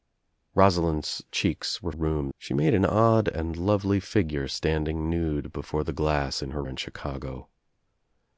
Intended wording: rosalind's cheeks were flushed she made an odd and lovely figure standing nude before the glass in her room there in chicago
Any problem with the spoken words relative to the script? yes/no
yes